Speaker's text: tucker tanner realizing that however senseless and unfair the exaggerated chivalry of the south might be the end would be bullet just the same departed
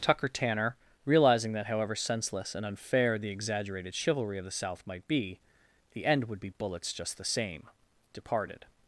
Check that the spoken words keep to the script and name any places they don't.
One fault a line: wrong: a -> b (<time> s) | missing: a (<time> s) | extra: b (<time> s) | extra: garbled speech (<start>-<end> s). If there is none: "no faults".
wrong: bullet -> bullets (6.5 s)